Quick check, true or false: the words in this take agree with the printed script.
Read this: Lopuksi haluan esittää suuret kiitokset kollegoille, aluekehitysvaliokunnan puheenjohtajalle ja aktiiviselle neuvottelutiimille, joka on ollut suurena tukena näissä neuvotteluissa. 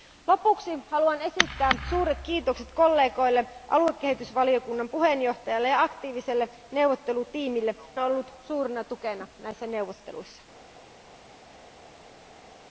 false